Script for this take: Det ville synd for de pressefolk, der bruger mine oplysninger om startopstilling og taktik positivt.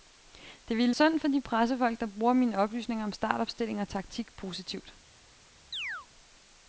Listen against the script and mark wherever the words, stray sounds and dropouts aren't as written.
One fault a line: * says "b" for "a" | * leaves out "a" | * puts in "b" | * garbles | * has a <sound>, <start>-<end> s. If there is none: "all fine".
* has a chirp, 5.7-6.1 s